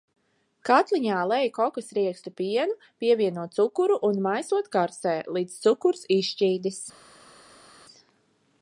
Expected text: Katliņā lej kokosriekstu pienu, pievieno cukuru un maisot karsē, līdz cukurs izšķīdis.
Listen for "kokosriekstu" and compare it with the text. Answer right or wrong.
right